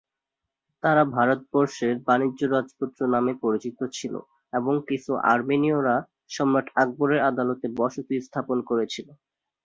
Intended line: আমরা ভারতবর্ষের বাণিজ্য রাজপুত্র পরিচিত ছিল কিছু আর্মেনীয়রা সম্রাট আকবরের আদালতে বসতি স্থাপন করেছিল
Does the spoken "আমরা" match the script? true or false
false